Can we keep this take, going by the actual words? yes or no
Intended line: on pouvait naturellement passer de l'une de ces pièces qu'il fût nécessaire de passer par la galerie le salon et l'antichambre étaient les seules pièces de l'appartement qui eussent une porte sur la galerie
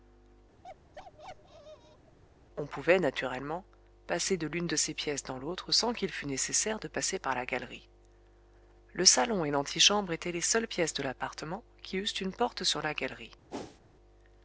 no